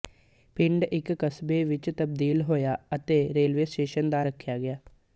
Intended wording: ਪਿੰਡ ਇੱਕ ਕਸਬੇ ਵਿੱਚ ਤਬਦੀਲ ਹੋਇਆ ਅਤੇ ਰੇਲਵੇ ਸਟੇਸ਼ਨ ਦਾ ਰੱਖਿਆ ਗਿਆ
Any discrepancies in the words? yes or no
no